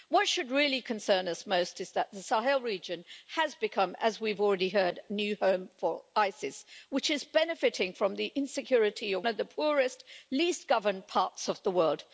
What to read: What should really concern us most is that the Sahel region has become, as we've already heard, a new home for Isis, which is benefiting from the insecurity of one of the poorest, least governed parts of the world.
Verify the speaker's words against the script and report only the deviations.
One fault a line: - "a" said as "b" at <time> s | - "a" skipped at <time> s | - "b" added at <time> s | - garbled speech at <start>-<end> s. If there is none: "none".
- "one" skipped at 9.3 s